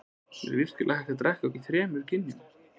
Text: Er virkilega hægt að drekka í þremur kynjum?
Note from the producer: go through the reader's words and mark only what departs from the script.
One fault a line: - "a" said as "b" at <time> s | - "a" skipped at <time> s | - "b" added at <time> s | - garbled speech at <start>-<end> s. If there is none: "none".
none